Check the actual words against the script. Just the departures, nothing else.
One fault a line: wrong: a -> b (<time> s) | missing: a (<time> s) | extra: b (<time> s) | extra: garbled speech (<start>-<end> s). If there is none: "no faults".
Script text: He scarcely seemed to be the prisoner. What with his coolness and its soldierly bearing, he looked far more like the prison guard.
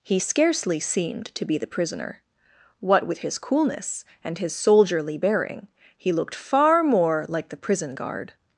wrong: its -> his (4.4 s)